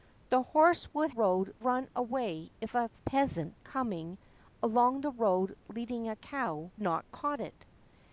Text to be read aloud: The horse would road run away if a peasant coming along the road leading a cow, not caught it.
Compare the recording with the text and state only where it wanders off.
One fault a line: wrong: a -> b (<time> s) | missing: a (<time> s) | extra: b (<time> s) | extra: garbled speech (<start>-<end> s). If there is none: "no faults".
no faults